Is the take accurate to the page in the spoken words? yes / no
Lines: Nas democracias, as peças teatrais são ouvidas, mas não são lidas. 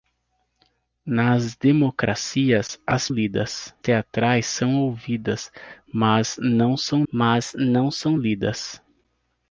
no